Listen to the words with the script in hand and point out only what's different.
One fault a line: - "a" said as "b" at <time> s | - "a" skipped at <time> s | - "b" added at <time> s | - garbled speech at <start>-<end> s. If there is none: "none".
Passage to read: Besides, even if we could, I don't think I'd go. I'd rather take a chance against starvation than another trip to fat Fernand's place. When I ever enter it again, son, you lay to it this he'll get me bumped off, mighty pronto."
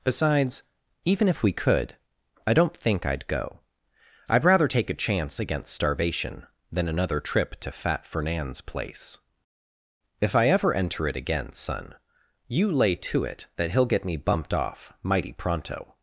- "When" said as "If" at 10.2 s
- "this" said as "that" at 13.6 s